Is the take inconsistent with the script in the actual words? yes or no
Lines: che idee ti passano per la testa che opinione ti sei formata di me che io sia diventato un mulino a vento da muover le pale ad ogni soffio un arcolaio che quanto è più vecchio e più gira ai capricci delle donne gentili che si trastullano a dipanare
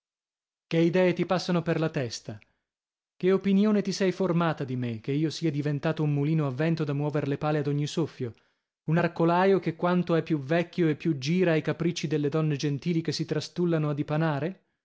no